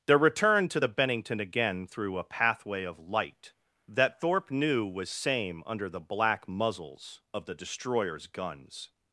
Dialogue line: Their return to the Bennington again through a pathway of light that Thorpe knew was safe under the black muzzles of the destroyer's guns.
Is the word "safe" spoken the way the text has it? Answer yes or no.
no